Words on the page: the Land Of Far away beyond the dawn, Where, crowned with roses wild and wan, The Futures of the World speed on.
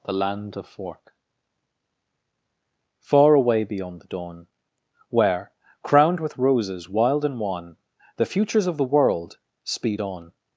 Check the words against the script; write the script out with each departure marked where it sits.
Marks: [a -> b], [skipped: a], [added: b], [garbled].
the Land Of [added: fork] Far away beyond the dawn, Where, crowned with roses wild and wan, The Futures of the World speed on.